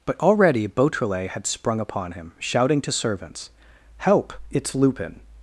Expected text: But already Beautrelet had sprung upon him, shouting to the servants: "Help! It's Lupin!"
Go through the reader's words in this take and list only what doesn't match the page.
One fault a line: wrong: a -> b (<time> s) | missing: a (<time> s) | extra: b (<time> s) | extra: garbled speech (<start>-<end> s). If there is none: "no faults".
missing: the (2.9 s)